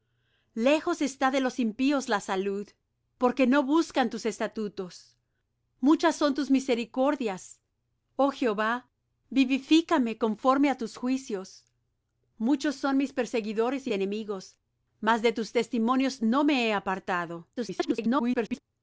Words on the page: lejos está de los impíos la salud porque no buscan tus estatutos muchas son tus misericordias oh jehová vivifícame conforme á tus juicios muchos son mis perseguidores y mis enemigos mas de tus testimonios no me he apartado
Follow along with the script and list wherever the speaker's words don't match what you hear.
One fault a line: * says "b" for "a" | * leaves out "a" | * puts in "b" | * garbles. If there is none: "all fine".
* leaves out "mis"
* garbles